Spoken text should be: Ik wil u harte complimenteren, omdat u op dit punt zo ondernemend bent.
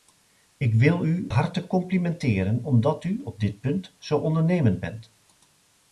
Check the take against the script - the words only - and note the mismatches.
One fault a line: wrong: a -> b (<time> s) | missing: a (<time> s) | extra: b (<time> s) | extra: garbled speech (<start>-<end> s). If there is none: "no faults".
no faults